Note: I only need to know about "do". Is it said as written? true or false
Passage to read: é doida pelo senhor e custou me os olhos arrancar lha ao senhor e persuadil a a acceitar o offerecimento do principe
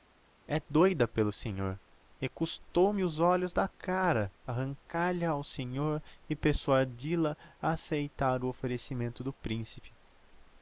true